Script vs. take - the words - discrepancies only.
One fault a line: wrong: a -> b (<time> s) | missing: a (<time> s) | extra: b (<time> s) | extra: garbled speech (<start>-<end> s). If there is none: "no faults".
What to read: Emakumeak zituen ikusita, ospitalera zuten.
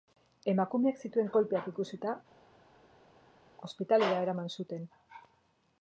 extra: kolpeak (1.4 s)
extra: eraman (4.3 s)